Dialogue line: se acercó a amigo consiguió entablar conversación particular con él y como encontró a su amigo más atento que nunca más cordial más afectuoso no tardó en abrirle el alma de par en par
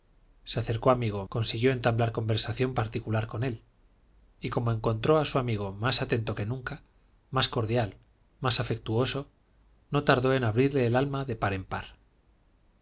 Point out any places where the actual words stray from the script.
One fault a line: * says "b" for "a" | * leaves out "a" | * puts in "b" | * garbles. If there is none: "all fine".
all fine